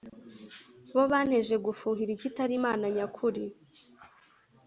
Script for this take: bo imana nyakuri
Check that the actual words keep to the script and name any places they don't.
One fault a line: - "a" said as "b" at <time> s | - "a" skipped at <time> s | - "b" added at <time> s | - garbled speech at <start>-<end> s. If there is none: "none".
- "banteje gufuhira ikitari" added at 1.1 s